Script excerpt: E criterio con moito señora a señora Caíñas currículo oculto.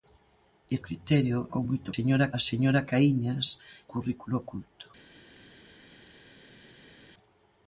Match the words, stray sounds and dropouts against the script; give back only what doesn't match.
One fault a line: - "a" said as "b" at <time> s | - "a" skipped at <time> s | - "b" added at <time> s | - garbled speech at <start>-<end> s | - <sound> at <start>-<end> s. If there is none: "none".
none